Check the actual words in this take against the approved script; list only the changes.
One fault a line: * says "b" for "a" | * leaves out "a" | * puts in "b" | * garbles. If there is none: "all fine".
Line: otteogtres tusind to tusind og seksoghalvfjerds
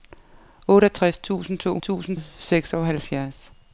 all fine